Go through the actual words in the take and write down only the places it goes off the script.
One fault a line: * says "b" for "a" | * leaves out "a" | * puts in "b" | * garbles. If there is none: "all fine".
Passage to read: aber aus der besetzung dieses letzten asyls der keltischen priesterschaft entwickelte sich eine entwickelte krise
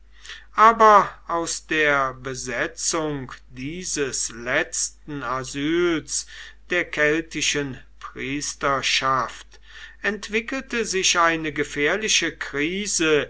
* says "gefährliche" for "entwickelte"